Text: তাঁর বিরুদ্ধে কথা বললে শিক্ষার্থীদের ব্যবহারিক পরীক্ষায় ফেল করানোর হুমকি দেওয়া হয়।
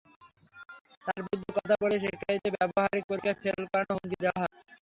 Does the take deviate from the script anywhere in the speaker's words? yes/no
no